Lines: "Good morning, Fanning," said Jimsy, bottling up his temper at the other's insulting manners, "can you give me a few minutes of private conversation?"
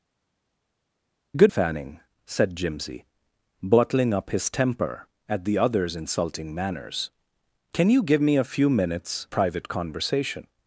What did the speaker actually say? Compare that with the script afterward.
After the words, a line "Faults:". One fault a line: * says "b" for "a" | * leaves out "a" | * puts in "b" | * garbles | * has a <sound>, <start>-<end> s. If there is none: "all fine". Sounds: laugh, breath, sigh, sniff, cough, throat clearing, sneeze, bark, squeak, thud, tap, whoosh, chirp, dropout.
"Good Fanning," said Jimsy, bottling up his temper at the other's insulting manners, "can you give me a few minutes private conversation?"
Faults:
* leaves out "morning"
* leaves out "of"